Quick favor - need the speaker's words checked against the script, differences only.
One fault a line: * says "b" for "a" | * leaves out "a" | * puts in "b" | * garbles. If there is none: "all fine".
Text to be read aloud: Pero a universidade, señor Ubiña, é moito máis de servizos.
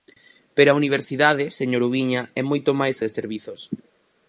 all fine